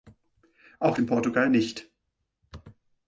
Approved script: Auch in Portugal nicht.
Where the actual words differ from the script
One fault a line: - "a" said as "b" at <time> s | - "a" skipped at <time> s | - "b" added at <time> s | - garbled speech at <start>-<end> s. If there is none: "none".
none